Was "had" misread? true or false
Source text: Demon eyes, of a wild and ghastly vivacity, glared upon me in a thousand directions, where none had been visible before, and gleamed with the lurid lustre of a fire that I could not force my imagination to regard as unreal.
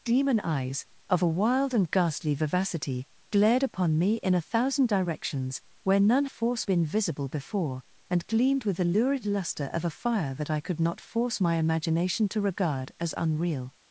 true